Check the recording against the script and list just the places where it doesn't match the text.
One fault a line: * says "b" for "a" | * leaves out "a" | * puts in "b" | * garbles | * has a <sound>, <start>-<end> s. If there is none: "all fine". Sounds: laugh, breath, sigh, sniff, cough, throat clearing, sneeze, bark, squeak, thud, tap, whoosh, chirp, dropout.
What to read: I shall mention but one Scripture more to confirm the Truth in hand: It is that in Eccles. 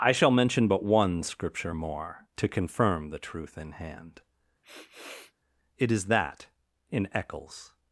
* has a sniff, 4.6-5.3 s